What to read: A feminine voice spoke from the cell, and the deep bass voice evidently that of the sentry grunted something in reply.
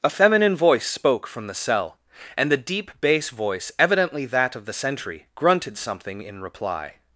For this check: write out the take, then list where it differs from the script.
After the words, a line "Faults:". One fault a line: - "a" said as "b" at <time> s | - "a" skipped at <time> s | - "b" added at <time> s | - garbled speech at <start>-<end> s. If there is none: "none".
A feminine voice spoke from the cell, and the deep bass voice evidently that of the sentry grunted something in reply.
Faults:
none